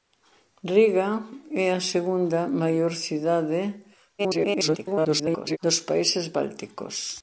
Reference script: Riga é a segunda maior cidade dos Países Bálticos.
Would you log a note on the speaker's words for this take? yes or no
yes